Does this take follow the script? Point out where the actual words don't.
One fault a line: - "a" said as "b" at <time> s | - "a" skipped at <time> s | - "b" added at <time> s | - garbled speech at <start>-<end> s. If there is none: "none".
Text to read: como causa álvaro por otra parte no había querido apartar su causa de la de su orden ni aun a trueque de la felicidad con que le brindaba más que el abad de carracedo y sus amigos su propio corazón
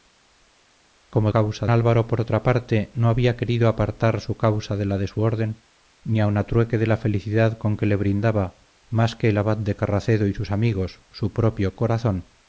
none